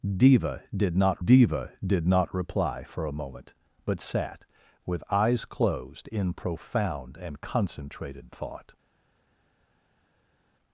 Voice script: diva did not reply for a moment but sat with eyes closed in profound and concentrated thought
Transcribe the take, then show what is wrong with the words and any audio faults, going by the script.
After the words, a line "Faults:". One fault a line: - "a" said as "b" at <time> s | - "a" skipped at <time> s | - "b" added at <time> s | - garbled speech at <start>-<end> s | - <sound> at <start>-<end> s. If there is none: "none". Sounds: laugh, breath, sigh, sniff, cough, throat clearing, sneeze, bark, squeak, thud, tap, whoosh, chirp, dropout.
diva did not diva did not reply for a moment but sat with eyes closed in profound and concentrated thought
Faults:
- "diva did not" added at 1.2 s